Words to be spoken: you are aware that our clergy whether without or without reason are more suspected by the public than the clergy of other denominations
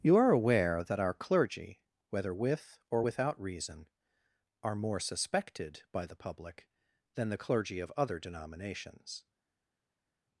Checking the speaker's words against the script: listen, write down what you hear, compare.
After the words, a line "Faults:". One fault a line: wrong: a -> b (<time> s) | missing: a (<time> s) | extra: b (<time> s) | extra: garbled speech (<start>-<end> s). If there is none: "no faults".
you are aware that our clergy whether with or without reason are more suspected by the public than the clergy of other denominations
Faults:
wrong: without -> with (2.3 s)